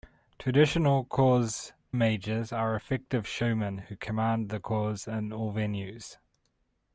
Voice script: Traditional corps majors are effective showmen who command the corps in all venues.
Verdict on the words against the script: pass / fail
pass